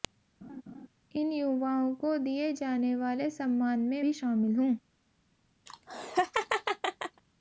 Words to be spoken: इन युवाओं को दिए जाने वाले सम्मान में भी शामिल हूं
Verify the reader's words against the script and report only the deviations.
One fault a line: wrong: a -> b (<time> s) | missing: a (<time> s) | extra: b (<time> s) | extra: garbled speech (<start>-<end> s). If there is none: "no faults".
no faults